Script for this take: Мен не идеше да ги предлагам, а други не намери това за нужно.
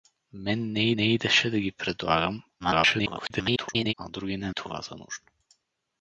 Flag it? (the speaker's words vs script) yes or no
yes